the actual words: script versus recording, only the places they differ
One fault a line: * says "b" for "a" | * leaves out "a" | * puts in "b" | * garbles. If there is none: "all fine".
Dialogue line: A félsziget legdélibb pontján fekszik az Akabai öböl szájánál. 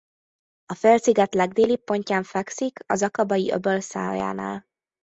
all fine